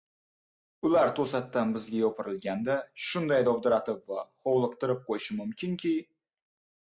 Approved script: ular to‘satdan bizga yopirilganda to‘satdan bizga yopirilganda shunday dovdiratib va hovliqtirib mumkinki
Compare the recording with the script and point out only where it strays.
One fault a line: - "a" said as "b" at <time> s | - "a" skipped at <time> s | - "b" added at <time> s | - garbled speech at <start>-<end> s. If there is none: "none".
- "to‘satdan bizga yopirilganda" skipped at 2.8 s
- "qo‘yishi" added at 5.1 s